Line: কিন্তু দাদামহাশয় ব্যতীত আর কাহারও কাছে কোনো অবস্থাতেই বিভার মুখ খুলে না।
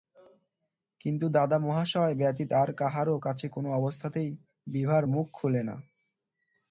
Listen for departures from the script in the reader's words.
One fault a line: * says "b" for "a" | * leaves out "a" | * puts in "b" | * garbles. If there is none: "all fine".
all fine